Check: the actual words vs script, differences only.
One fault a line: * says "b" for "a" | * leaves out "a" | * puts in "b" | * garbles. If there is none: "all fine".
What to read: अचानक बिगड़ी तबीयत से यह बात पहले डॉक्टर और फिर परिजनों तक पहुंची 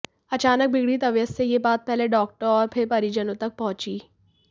all fine